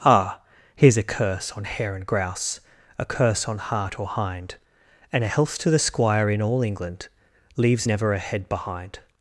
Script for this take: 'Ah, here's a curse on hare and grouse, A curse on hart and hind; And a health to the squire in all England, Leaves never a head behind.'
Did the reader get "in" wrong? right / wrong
right